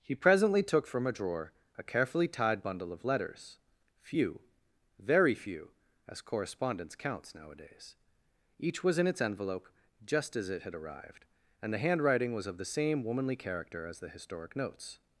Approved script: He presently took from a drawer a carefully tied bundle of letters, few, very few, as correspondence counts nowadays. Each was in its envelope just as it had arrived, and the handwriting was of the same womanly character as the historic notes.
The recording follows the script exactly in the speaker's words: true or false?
true